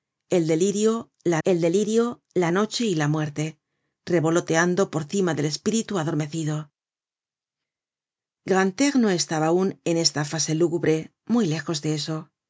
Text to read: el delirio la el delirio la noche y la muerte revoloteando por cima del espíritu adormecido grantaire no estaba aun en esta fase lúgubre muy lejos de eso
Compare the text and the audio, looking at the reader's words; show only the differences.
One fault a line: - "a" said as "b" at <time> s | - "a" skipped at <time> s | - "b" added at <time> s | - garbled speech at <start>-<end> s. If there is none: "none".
none